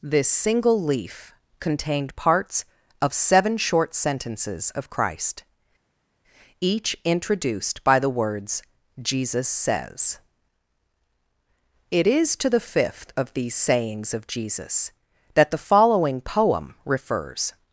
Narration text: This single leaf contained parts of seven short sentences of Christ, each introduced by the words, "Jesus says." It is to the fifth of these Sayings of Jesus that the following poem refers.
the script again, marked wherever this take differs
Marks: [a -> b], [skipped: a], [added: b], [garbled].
This single leaf contained parts of seven short sentences of Christ, each introduced by the words, "Jesus says." It is to the fifth of these Sayings of Jesus that the following poem refers.